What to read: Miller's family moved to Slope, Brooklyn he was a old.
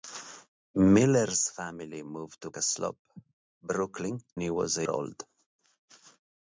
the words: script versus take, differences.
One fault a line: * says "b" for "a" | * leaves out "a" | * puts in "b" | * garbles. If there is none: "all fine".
all fine